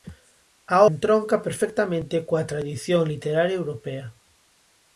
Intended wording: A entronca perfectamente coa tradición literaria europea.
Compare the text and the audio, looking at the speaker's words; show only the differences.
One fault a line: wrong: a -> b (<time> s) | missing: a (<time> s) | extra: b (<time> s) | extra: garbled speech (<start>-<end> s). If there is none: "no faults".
no faults